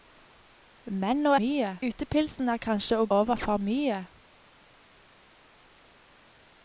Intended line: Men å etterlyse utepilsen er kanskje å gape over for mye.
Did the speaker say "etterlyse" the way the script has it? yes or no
no